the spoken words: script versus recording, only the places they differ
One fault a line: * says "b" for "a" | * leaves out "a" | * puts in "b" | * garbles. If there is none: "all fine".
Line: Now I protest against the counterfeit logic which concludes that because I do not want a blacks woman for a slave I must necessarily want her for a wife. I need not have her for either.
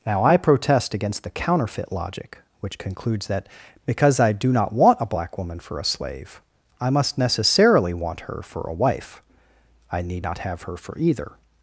* says "black" for "blacks"